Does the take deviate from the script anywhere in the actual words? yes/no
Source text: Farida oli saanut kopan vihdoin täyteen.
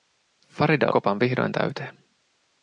yes